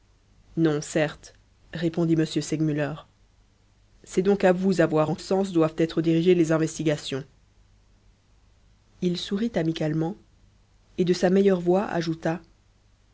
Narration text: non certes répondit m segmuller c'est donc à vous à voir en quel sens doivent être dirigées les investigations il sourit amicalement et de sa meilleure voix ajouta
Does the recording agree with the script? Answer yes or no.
no